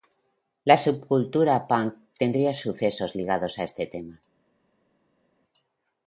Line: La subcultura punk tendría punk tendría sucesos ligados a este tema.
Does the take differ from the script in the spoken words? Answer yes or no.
yes